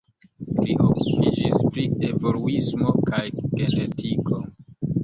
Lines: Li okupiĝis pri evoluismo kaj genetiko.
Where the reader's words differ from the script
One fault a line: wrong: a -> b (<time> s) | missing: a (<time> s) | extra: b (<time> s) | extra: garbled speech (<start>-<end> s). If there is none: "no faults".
no faults